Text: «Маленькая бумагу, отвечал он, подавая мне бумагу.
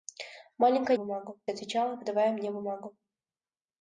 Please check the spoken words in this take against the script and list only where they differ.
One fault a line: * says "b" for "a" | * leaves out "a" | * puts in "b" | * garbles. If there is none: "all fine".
all fine